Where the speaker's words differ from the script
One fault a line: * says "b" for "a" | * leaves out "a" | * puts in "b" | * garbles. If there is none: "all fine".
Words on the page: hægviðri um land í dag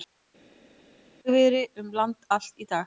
* puts in "allt"